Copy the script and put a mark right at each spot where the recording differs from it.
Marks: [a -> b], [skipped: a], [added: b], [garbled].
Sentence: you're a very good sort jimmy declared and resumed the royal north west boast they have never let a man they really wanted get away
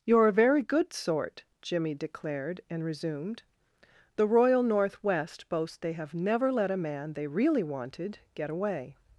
you're a very good sort jimmy declared and resumed the royal north west boast they have never let a man they really wanted get away